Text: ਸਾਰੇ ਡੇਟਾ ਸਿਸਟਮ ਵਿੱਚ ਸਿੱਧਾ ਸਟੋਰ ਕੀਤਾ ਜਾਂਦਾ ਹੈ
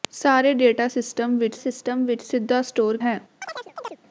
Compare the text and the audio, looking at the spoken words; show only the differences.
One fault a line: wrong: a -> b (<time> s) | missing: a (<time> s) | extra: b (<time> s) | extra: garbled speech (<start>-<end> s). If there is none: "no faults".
extra: ਸਿਸਟਮ ਵਿੱਚ (1.5 s)
missing: ਕੀਤਾ ਜਾਂਦਾ (3.0 s)